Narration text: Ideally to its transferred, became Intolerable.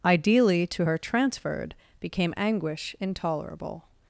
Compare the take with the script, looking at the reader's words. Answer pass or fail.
fail